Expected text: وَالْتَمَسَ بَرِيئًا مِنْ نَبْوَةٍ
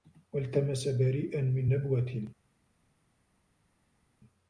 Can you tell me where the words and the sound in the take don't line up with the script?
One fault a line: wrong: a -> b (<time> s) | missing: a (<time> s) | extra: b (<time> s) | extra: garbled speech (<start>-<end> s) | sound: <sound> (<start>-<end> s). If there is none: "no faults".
no faults